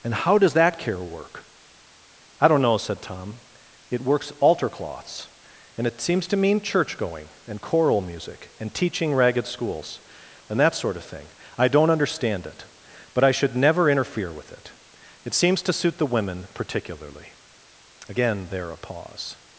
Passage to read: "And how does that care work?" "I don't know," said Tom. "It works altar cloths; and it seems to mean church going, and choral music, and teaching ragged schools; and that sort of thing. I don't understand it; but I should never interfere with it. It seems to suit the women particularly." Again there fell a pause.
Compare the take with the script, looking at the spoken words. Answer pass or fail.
fail